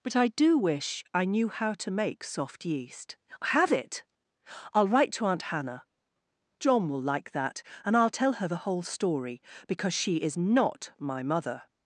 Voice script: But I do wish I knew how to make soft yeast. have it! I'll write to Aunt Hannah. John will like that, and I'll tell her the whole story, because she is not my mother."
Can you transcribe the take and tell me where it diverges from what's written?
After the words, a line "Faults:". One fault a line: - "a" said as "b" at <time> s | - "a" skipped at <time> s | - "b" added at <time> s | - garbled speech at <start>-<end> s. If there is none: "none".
But I do wish I knew how to make soft yeast. have it! I'll write to Aunt Hannah. John will like that, and I'll tell her the whole story, because she is not my mother."
Faults:
none